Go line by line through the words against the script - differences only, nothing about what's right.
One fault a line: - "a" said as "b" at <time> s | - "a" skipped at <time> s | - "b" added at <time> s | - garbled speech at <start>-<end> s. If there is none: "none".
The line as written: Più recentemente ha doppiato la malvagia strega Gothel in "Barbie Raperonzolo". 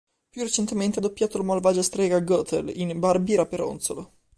none